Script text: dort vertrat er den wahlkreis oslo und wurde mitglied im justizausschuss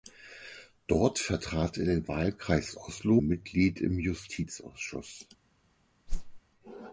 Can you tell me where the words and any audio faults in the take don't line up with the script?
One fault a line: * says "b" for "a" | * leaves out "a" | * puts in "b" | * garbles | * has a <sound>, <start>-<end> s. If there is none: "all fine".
* leaves out "und wurde"
* has a whoosh, 6.1-6.4 s